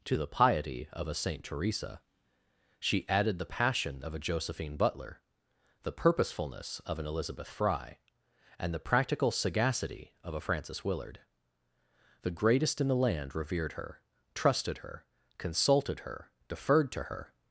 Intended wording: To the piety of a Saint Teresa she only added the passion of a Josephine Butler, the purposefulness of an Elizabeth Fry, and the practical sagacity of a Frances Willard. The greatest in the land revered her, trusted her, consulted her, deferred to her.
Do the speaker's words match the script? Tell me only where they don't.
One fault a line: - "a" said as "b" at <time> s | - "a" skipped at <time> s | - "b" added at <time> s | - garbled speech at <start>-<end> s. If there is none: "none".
- "only" skipped at 3.1 s